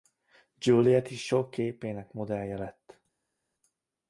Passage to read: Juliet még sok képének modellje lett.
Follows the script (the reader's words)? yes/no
no